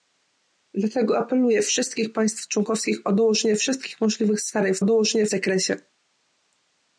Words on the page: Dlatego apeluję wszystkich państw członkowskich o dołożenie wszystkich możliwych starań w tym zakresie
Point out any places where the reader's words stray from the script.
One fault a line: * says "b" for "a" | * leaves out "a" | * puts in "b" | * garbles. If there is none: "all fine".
* says "dołożenie" for "tym"